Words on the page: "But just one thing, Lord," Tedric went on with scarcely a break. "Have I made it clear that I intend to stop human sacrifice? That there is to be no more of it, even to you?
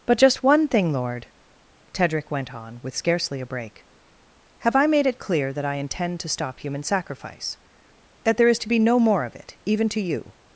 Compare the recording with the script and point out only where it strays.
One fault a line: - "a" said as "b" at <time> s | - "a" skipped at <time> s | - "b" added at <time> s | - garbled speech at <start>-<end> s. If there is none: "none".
none